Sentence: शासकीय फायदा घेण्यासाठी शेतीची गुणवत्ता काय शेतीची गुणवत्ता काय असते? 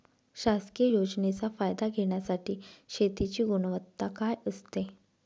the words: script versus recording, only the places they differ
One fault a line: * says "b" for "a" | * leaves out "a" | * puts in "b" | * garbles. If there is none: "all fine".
* puts in "योजनेचा"
* leaves out "शेतीची गुणवत्ता काय"